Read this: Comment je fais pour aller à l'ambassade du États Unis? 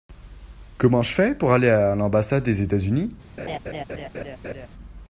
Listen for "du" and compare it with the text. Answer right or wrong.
wrong